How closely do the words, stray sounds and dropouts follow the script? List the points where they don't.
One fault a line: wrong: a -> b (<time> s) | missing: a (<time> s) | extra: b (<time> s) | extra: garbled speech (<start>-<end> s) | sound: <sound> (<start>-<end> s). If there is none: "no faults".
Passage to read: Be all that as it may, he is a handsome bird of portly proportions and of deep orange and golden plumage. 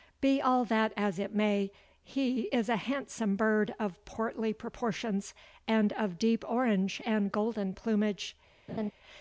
sound: laugh (8.7-8.9 s)